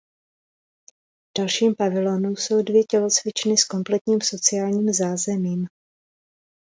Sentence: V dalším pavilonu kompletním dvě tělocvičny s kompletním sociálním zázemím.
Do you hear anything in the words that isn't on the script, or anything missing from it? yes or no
yes